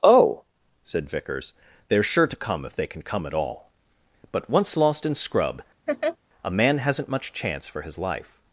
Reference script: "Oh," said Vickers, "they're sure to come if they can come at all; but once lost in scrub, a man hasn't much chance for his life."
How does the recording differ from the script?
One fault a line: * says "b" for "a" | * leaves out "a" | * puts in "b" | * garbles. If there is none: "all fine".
all fine